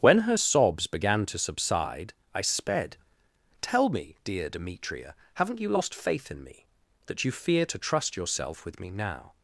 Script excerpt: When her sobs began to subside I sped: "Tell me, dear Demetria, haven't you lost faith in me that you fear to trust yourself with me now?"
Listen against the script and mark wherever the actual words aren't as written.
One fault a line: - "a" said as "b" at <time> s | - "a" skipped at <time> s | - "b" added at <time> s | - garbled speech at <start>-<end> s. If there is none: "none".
none